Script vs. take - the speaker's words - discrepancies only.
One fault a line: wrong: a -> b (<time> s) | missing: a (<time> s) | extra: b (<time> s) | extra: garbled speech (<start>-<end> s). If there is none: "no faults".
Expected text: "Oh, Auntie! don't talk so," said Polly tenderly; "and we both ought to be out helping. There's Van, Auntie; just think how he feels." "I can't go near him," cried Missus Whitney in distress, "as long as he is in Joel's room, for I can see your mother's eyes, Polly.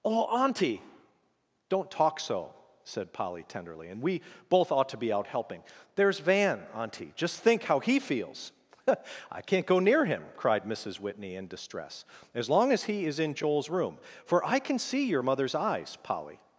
no faults